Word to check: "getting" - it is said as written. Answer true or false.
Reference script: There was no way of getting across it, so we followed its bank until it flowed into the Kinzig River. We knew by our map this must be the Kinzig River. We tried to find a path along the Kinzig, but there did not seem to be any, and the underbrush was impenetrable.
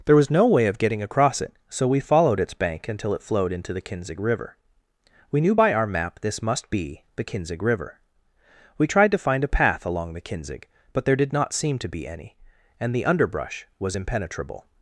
true